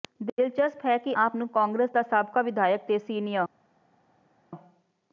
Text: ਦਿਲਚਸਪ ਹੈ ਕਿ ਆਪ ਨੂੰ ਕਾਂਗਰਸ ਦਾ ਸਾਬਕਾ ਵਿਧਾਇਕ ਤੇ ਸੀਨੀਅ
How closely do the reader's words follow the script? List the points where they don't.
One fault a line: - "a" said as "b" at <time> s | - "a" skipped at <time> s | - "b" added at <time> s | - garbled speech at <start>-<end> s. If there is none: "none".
none